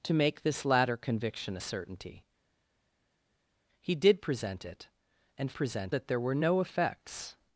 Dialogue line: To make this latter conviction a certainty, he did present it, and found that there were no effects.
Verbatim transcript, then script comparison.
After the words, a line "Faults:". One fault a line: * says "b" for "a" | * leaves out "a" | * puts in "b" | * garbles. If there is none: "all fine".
To make this latter conviction a certainty, he did present it, and present that there were no effects.
Faults:
* says "present" for "found"